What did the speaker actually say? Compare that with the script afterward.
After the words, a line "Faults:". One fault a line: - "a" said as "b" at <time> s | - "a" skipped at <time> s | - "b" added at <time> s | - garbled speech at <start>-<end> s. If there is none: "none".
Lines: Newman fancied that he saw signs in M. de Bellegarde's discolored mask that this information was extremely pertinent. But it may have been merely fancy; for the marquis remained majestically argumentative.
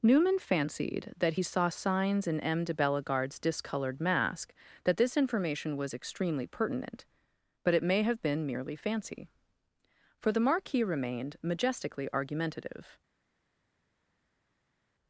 Newman fancied that he saw signs in M. de Bellegarde's discolored mask that this information was extremely pertinent. But it may have been merely fancy; for the marquis remained majestically argumentative.
Faults:
none